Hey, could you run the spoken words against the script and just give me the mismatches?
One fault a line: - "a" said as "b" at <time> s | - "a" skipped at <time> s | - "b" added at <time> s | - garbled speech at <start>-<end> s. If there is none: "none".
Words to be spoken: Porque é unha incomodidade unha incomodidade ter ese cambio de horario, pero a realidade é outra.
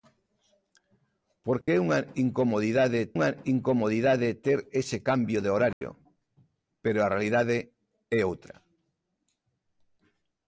none